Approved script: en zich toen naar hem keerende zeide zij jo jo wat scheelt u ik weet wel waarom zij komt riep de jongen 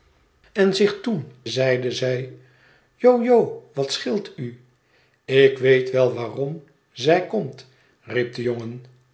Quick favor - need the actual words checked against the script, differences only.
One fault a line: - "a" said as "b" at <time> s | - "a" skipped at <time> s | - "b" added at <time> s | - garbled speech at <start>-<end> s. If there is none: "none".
- "naar hem keerende" skipped at 1.3 s